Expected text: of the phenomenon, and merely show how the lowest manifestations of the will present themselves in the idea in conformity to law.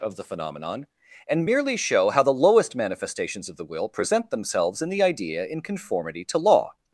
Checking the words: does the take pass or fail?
pass